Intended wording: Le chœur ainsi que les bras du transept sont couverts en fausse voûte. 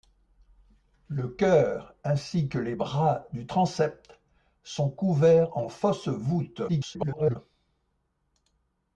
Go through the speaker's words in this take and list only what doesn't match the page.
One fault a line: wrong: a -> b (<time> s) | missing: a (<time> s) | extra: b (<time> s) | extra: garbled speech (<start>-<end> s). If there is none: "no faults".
extra: garbled speech (6.7-7.4 s)